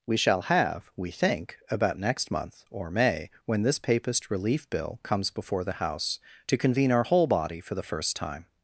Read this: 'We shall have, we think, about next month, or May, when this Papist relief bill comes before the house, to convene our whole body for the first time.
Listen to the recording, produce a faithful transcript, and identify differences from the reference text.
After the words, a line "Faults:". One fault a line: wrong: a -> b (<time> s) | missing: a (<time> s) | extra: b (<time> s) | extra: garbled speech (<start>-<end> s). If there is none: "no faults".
'We shall have, we think, about next month, or May, when this Papist relief bill comes before the house, to convene our whole body for the first time.
Faults:
no faults